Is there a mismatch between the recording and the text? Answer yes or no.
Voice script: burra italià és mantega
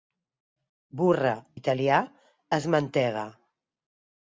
no